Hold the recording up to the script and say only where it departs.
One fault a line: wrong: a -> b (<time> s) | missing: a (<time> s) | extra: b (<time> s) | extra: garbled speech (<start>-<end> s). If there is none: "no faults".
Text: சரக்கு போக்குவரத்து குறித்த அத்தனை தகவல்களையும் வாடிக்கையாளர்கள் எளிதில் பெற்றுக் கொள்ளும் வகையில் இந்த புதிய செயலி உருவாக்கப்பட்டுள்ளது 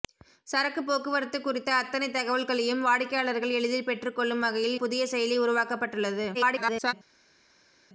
missing: இந்த (4.8 s)
extra: garbled speech (6.3-6.9 s)